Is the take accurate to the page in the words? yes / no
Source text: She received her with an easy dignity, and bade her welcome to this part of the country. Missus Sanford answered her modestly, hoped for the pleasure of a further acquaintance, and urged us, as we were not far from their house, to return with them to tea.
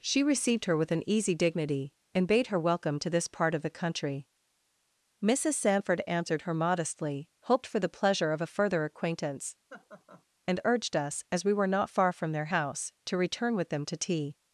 yes